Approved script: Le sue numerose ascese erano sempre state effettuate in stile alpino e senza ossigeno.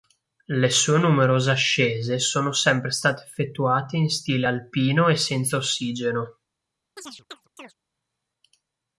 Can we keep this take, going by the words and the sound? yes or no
no